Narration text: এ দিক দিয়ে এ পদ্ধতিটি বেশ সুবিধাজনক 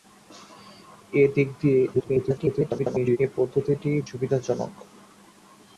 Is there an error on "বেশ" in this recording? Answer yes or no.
yes